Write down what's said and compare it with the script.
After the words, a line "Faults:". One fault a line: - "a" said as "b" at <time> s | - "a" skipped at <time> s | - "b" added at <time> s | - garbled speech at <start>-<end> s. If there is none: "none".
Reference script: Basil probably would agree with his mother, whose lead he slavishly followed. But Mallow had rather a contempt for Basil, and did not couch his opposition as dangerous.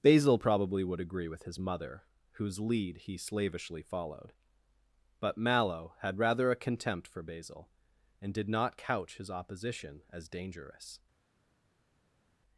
Basil probably would agree with his mother, whose lead he slavishly followed. But Mallow had rather a contempt for Basil, and did not couch his opposition as dangerous.
Faults:
none